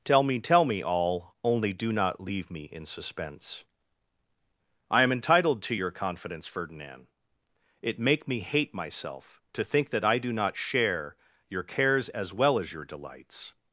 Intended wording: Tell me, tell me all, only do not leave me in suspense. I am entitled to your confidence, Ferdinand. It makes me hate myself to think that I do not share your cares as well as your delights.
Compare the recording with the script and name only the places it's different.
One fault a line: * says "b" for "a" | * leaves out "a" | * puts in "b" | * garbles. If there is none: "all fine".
* says "make" for "makes"